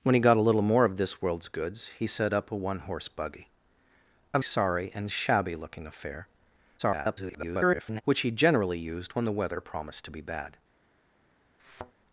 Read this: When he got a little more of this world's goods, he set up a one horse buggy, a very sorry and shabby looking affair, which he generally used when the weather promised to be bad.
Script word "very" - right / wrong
wrong